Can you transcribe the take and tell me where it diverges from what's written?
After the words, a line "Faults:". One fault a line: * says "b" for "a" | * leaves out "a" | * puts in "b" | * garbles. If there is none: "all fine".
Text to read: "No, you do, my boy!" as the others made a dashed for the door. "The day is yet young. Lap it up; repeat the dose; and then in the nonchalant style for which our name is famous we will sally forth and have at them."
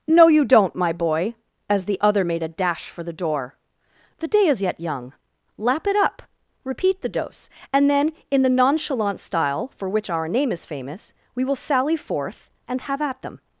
"No, you don't, my boy!" as the other made a dash for the door. "The day is yet young. Lap it up; repeat the dose; and then in the nonchalant style for which our name is famous we will sally forth and have at them."
Faults:
* says "don't" for "do"
* says "other" for "others"
* says "dash" for "dashed"